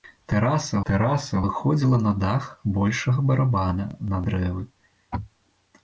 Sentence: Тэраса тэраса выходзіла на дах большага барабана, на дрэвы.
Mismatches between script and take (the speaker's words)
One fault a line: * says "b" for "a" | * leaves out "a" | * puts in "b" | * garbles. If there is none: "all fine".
all fine